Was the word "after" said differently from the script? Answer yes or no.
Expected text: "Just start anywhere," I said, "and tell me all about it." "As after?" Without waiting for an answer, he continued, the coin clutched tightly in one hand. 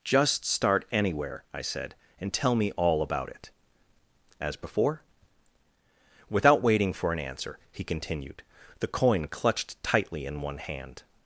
yes